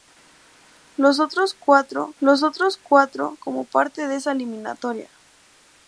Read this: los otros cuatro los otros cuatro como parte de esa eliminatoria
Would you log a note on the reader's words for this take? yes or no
no